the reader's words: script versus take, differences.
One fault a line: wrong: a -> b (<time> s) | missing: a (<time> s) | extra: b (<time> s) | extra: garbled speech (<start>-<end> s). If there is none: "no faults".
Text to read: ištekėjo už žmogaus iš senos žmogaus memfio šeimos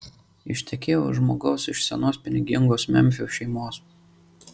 wrong: žmogaus -> pinigingos (2.2 s)